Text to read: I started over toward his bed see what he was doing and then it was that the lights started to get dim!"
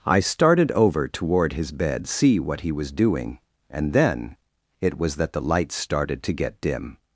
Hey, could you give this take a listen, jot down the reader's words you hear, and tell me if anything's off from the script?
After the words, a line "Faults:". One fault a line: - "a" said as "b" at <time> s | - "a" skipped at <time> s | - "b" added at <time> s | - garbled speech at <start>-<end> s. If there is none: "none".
I started over toward his bed see what he was doing and then it was that the lights started to get dim!"
Faults:
none